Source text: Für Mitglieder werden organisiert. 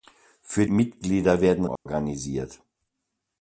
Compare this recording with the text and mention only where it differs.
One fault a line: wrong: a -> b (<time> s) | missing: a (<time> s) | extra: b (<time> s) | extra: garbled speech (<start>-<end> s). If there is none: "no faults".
no faults